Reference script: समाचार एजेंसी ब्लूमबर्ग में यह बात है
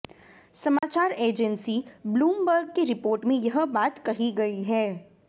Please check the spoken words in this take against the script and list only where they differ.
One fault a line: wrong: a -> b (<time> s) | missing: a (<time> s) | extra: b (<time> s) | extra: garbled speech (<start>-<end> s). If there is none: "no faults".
extra: की रिपोर्ट (2.7 s)
extra: कही गई (4.1 s)